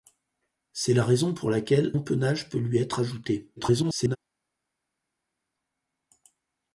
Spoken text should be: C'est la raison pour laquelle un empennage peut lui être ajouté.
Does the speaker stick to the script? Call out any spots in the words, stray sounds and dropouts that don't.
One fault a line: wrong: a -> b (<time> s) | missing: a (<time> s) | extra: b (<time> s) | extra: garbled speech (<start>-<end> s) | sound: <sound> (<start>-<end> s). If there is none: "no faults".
missing: un (1.9 s)
extra: garbled speech (3.6-4.2 s)